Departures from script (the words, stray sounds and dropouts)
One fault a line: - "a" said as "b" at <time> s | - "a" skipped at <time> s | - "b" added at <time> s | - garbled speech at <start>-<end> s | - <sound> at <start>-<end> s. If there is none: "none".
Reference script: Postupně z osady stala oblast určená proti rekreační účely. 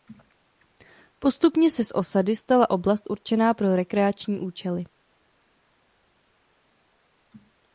- "se" added at 1.7 s
- "proti" said as "pro" at 3.5 s